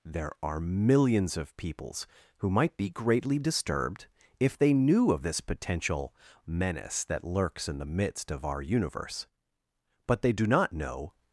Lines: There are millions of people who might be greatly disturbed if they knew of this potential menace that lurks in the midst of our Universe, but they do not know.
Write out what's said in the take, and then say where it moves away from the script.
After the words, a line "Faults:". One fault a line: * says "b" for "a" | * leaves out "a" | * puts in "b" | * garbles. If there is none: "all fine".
There are millions of peoples who might be greatly disturbed if they knew of this potential menace that lurks in the midst of our Universe, but they do not know.
Faults:
* says "peoples" for "people"